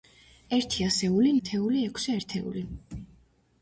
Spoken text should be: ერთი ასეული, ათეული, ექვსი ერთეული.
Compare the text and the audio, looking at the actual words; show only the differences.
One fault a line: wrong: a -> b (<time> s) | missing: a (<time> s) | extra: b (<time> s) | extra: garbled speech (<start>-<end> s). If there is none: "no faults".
no faults